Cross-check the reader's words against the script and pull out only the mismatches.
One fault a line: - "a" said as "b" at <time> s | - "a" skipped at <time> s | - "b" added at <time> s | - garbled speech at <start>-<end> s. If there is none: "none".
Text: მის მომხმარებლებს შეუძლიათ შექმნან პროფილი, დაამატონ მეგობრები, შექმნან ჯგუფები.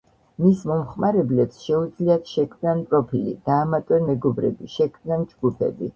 none